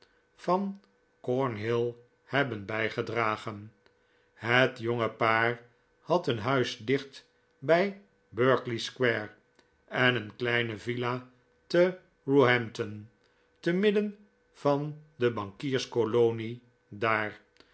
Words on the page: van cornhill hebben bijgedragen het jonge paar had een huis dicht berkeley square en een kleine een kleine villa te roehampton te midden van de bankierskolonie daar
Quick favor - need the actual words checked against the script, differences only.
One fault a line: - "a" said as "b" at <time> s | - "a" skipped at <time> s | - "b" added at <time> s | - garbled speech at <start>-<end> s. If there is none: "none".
- "bij" added at 7.6 s
- "een kleine" skipped at 10.8 s